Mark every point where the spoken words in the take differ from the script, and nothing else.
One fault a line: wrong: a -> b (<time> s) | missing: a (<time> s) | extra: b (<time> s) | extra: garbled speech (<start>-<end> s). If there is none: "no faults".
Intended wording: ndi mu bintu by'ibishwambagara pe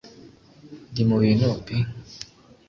missing: by'ibishwambagara (1.5 s)